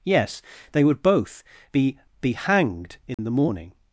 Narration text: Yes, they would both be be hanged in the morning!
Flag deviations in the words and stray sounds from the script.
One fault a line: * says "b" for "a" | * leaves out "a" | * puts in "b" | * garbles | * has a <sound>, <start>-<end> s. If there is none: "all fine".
* has a dropout, 3.1-3.2 s